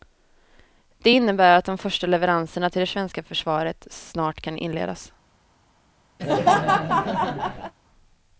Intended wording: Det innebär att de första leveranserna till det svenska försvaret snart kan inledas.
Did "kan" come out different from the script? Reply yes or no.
no